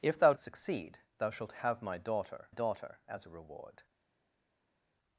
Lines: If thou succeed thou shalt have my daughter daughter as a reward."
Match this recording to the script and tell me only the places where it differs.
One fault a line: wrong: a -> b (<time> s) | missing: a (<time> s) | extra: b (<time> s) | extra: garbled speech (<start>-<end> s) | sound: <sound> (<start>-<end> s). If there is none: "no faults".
no faults